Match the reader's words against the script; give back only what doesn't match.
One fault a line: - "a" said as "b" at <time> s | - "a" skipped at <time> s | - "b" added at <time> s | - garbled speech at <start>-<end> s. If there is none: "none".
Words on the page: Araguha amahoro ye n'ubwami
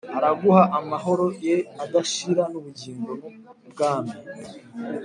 - "adashira n'ubugingo" added at 1.8 s